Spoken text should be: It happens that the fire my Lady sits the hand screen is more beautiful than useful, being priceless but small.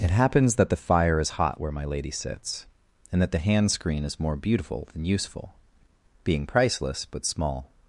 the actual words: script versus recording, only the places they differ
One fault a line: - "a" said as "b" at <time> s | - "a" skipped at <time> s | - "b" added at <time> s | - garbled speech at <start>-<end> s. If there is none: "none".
- "is hot where" added at 1.2 s
- "and that" added at 3.1 s